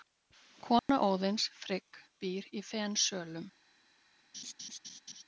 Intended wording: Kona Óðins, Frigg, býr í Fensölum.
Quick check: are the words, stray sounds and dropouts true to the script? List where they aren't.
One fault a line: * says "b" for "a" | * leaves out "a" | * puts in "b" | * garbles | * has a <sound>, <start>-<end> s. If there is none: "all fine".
* has a dropout, 0.8-0.9 s
* has a laugh, 4.3-5.2 s